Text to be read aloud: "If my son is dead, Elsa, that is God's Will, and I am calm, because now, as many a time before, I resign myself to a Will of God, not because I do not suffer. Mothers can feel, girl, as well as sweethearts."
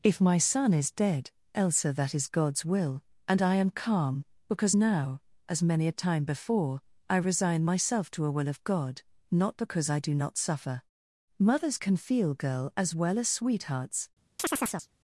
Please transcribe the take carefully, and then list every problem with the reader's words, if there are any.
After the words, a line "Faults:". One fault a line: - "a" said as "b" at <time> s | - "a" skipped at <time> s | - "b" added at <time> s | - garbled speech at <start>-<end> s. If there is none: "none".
"If my son is dead, Elsa, that is God's Will, and I am calm, because now, as many a time before, I resign myself to a Will of God, not because I do not suffer. Mothers can feel, girl, as well as sweethearts."
Faults:
none